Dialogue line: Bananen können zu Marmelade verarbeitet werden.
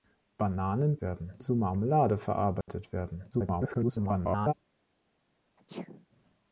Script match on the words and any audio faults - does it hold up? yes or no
no